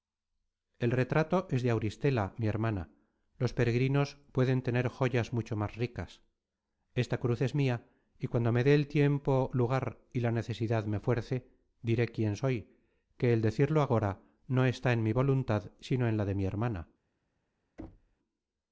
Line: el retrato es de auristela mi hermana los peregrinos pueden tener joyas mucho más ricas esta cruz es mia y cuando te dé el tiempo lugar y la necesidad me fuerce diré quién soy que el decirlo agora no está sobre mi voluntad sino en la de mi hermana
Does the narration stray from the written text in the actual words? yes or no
yes